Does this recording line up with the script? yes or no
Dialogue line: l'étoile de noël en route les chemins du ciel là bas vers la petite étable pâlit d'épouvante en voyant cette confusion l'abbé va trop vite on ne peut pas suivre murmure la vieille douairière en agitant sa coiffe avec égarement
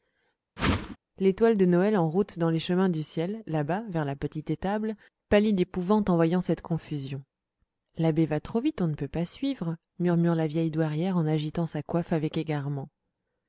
no